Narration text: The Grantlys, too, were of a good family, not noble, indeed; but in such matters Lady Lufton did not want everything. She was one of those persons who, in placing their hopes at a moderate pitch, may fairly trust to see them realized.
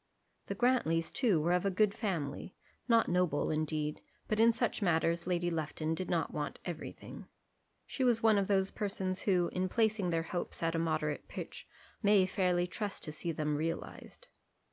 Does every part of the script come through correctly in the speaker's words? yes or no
yes